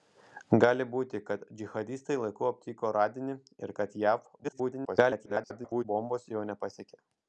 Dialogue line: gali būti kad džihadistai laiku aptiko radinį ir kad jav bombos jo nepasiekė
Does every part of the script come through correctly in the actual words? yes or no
no